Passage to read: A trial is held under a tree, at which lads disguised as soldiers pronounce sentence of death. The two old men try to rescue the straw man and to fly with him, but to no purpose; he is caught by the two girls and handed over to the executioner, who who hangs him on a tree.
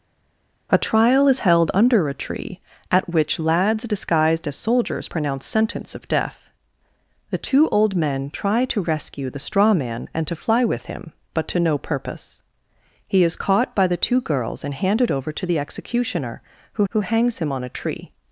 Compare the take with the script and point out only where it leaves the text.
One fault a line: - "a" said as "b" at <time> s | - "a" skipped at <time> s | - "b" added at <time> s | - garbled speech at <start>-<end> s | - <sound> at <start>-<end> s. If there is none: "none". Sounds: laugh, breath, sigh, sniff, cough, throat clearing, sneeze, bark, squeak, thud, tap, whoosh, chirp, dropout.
none